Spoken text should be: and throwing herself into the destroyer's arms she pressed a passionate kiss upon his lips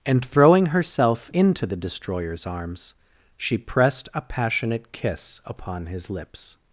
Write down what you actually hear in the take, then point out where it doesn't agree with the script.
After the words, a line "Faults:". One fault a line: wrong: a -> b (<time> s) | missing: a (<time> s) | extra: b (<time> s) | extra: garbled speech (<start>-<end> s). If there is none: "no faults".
and throwing herself into the destroyer's arms she pressed a passionate kiss upon his lips
Faults:
no faults